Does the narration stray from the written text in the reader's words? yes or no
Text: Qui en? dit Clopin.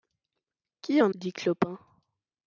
no